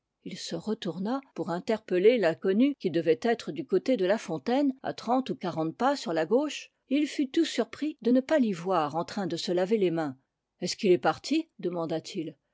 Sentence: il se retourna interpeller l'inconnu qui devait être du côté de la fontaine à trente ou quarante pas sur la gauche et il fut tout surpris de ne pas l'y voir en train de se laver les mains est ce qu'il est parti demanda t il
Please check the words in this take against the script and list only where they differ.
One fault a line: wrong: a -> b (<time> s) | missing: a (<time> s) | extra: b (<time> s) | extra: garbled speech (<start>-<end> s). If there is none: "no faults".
extra: pour (1.4 s)